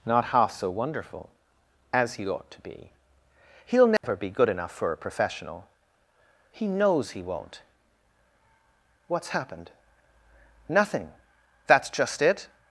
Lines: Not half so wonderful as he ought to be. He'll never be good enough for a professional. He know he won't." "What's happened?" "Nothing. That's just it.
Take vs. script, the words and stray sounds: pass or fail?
fail